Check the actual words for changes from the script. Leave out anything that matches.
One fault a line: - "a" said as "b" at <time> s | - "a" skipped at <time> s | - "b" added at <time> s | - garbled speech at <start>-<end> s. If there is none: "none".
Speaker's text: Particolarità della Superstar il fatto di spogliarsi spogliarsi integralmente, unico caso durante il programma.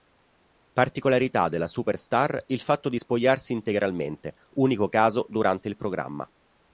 - "spogliarsi" skipped at 3.5 s